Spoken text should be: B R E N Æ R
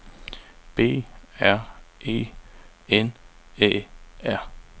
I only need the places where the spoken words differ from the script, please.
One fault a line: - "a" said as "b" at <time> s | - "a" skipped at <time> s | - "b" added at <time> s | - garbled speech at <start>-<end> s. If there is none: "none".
none